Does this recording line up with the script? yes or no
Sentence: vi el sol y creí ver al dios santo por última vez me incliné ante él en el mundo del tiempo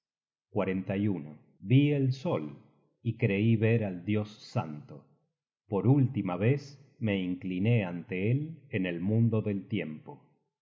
yes